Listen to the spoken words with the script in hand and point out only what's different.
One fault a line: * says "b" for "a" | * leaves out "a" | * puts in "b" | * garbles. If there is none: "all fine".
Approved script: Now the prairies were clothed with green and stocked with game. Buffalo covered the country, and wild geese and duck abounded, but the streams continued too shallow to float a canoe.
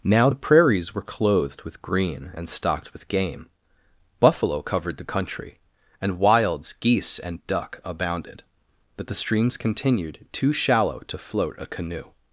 * says "wilds" for "wild"